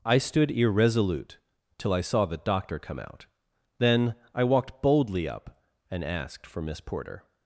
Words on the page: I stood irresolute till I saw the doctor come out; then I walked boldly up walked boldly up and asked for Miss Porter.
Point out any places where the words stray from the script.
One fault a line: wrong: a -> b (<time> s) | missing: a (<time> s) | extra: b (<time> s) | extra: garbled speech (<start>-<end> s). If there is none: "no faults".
missing: walked boldly up (5.6 s)